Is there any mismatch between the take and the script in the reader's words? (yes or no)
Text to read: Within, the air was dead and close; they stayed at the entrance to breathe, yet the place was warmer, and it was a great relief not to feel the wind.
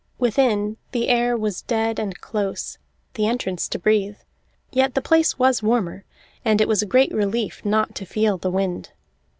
yes